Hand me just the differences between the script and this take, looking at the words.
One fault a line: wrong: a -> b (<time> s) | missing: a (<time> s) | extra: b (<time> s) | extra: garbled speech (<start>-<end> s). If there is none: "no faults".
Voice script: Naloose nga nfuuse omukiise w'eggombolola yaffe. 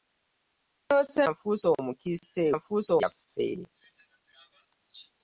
missing: nga (1.2 s)
wrong: w'eggombolola -> nfuuse (2.6 s)